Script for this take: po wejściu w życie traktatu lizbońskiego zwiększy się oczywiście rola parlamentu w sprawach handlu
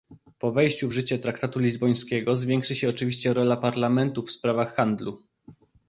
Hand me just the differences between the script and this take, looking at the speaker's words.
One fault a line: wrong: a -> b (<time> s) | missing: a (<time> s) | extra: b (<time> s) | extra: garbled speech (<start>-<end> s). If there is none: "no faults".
no faults